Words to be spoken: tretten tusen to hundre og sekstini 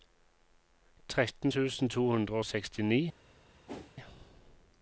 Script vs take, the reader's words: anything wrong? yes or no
no